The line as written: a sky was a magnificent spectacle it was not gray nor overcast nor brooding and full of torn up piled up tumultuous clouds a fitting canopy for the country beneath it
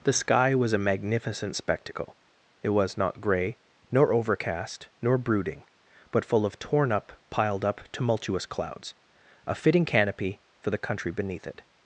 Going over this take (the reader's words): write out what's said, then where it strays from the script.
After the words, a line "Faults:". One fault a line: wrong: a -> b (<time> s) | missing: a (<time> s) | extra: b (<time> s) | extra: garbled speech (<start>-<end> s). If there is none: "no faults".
the sky was a magnificent spectacle it was not gray nor overcast nor brooding but full of torn up piled up tumultuous clouds a fitting canopy for the country beneath it
Faults:
wrong: a -> the (0.0 s)
wrong: and -> but (6.1 s)